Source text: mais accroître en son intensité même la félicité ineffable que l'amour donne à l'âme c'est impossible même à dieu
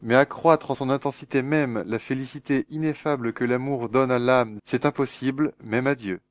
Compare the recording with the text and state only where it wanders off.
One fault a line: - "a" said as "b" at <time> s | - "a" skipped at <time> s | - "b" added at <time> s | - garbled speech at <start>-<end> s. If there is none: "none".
none